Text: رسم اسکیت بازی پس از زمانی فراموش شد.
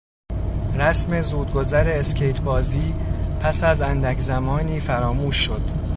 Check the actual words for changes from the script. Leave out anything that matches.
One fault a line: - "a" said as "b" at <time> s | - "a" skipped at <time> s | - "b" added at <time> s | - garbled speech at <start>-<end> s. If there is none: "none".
- "زودگذر" added at 1.2 s
- "اندک" added at 3.8 s